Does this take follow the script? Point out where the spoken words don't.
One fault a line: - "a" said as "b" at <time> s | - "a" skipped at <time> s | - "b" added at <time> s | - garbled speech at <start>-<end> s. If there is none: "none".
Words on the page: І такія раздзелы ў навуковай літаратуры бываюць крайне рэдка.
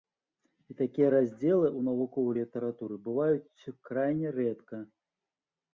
none